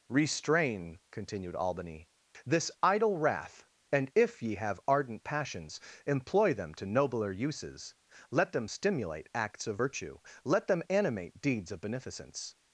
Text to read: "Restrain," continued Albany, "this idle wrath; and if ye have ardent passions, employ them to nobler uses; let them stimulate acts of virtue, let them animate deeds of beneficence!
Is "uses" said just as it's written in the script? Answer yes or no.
yes